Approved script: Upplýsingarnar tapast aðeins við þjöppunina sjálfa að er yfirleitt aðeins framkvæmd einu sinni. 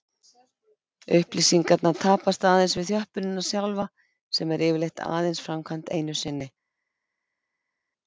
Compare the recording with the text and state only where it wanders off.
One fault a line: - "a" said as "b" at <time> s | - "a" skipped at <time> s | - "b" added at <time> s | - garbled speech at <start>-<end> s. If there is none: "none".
- "að" said as "sem" at 4.4 s